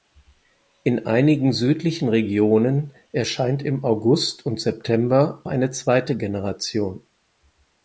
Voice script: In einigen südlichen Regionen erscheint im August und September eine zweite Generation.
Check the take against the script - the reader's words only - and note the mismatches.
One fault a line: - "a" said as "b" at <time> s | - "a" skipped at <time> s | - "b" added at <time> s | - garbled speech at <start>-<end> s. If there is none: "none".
none